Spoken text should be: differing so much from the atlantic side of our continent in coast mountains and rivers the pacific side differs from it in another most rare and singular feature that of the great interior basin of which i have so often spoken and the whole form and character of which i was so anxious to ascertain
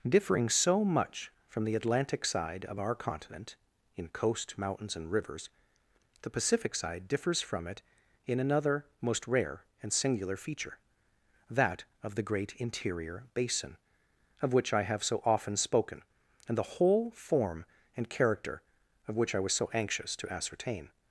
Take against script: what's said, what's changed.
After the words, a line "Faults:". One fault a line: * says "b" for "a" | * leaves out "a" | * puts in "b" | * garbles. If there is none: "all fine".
differing so much from the atlantic side of our continent in coast mountains and rivers the pacific side differs from it in another most rare and singular feature that of the great interior basin of which i have so often spoken and the whole form and character of which i was so anxious to ascertain
Faults:
all fine